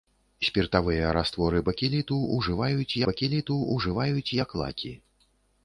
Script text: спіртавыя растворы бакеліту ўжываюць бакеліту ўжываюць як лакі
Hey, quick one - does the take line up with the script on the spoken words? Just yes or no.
yes